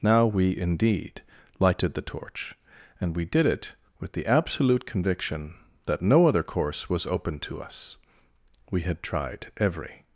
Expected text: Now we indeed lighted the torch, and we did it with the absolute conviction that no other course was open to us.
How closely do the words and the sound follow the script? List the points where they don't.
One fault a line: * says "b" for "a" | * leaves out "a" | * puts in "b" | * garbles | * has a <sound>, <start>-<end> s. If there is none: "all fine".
* puts in "We had tried every"